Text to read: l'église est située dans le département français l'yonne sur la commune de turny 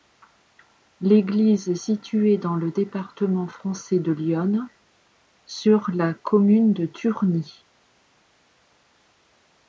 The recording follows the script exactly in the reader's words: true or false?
false